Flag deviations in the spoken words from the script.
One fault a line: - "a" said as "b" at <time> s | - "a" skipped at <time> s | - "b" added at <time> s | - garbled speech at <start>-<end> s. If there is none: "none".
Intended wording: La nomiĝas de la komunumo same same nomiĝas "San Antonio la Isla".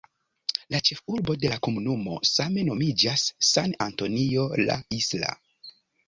- "nomiĝas" said as "ĉefurbo" at 0.9 s
- "same" skipped at 2.6 s